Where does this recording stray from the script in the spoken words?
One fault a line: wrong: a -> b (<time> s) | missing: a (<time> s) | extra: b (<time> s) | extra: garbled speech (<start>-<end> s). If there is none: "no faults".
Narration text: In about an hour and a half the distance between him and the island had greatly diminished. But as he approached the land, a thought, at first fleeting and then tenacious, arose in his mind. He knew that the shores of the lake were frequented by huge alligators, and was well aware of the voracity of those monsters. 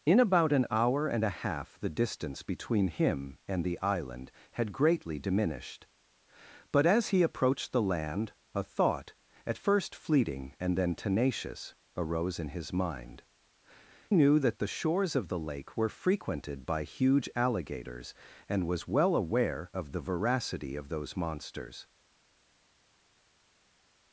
missing: He (13.2 s)